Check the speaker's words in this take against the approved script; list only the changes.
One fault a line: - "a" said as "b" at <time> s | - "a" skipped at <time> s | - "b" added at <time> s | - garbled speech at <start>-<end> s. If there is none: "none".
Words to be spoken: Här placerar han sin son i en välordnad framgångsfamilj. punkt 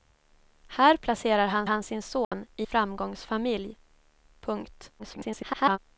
- "han" added at 1.6 s
- "en välordnad" skipped at 2.7 s
- garbled speech at 5.0-5.8 s